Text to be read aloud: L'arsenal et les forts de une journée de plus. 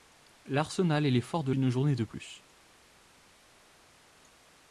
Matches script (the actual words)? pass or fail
pass